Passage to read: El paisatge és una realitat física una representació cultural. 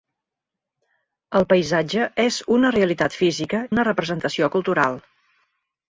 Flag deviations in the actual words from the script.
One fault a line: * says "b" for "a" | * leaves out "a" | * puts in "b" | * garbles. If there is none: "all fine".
all fine